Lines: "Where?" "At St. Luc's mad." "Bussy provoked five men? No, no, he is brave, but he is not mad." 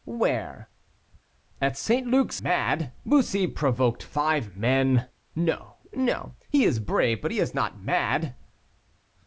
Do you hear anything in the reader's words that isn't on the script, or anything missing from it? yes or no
no